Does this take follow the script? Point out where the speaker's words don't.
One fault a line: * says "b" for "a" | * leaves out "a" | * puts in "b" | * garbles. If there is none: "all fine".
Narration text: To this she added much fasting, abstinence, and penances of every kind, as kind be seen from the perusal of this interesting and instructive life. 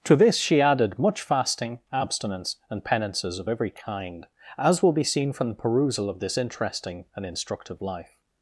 * says "will" for "kind"